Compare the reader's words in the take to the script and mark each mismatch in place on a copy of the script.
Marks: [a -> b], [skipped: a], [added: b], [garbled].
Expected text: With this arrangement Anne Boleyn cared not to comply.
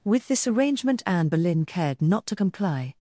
With this arrangement Anne Boleyn cared not to comply.